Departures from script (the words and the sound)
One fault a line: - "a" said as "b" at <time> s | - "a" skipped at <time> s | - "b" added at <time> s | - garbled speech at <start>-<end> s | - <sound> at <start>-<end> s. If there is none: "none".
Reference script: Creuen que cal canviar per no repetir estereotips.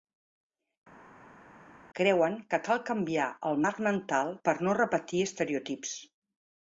- "el marc mental" added at 3.5 s